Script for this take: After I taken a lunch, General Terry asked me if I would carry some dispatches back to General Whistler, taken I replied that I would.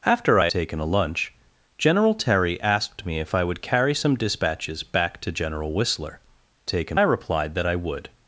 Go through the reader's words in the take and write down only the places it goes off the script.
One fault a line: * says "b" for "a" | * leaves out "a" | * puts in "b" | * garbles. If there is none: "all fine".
all fine